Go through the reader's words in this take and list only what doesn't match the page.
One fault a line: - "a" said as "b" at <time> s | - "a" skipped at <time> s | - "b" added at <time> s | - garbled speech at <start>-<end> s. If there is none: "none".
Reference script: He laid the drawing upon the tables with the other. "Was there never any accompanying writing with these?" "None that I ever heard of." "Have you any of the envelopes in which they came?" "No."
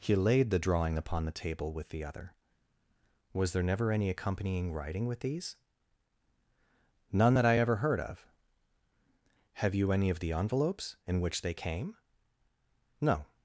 - "tables" said as "table" at 1.4 s